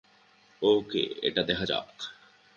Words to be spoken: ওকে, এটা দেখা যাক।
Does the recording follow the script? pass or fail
pass